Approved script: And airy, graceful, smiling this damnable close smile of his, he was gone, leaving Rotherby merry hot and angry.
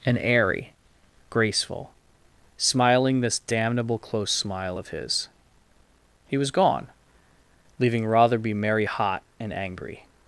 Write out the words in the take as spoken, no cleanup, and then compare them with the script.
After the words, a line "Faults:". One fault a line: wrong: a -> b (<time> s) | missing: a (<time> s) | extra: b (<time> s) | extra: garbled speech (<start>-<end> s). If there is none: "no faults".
And airy, graceful, smiling this damnable close smile of his, he was gone, leaving Rotherby merry hot and angry.
Faults:
no faults